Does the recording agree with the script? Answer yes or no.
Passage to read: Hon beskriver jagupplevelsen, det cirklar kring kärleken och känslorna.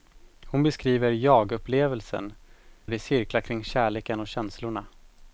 yes